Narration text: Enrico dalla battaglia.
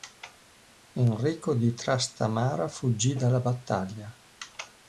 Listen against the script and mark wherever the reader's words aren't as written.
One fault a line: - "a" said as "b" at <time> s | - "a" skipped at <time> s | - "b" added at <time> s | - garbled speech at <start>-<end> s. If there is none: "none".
- "di Trastamara fuggì" added at 1.5 s